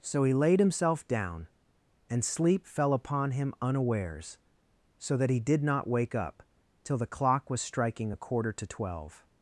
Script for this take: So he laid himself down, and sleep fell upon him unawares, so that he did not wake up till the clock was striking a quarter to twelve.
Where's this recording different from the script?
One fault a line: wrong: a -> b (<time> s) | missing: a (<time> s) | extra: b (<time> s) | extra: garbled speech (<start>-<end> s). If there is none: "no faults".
no faults